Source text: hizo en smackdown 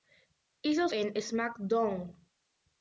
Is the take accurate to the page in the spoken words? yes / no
yes